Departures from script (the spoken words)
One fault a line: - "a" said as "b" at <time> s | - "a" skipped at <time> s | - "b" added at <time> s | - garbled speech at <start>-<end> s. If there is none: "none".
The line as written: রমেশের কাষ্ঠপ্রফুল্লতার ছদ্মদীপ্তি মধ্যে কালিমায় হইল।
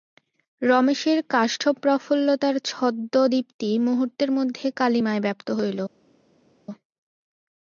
- "মুহূর্তের" added at 3.8 s
- "ব্যাপ্ত" added at 5.2 s